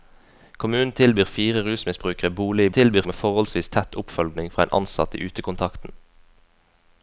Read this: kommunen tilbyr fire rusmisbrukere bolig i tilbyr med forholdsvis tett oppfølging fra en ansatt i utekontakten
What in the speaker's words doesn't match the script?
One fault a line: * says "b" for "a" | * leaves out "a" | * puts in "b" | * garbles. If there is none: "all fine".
all fine